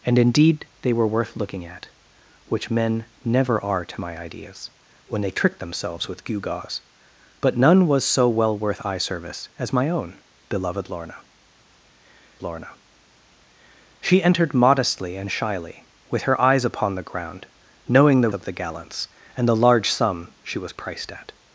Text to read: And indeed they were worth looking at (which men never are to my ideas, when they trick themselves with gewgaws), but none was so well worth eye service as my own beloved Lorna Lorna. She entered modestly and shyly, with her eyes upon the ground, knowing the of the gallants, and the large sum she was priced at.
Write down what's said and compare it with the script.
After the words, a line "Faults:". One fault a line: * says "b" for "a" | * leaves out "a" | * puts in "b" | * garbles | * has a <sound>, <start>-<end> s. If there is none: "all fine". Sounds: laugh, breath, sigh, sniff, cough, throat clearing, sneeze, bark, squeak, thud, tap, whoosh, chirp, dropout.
And indeed they were worth looking at (which men never are to my ideas, when they trick themselves with gewgaws), but none was so well worth eye service as my own beloved Lorna Lorna. She entered modestly and shyly, with her eyes upon the ground, knowing the of the gallants, and the large sum she was priced at.
Faults:
all fine